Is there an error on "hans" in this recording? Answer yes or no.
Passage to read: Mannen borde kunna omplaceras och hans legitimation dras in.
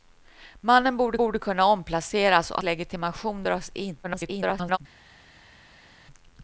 yes